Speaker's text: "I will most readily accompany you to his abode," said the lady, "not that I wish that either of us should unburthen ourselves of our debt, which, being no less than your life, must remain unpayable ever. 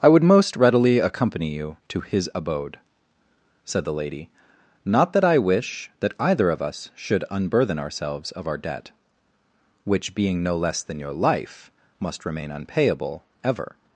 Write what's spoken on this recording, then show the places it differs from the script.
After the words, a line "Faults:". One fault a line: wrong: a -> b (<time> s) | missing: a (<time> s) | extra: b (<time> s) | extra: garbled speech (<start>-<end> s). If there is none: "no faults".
"I would most readily accompany you to his abode," said the lady, "not that I wish that either of us should unburthen ourselves of our debt, which, being no less than your life, must remain unpayable ever.
Faults:
wrong: will -> would (0.1 s)